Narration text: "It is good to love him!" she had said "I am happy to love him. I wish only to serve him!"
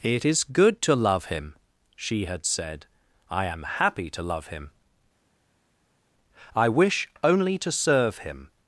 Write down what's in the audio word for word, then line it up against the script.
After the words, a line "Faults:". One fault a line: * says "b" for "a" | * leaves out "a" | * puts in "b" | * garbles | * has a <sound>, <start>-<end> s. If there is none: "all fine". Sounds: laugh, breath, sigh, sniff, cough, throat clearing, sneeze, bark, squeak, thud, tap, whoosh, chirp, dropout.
"It is good to love him!" she had said "I am happy to love him. I wish only to serve him!"
Faults:
all fine